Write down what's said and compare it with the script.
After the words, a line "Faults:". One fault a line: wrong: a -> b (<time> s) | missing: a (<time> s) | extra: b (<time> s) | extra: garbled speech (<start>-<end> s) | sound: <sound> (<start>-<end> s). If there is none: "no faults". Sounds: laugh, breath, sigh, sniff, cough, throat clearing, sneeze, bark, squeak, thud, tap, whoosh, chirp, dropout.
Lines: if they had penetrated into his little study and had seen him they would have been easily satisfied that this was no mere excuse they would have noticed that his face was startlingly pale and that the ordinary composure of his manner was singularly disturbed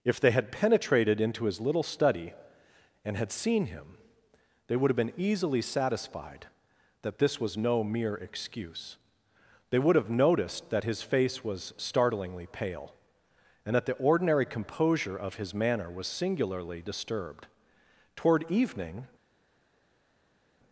if they had penetrated into his little study and had seen him they would have been easily satisfied that this was no mere excuse they would have noticed that his face was startlingly pale and that the ordinary composure of his manner was singularly disturbed toward evening
Faults:
extra: toward evening (18.2 s)